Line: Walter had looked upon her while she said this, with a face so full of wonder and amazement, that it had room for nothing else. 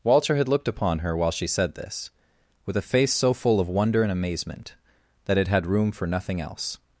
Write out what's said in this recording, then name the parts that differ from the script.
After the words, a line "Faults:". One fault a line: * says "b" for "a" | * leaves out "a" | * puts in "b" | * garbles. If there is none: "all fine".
Walter had looked upon her while she said this, with a face so full of wonder and amazement, that it had room for nothing else.
Faults:
all fine